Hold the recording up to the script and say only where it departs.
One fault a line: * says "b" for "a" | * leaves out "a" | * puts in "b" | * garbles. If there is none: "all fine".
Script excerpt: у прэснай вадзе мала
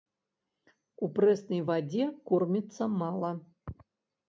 * puts in "корміцца"